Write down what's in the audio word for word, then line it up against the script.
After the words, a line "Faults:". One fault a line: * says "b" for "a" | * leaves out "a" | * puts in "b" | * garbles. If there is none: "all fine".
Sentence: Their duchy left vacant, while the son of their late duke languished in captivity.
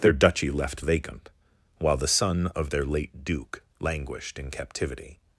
Their duchy left vacant, while the son of their late duke languished in captivity.
Faults:
all fine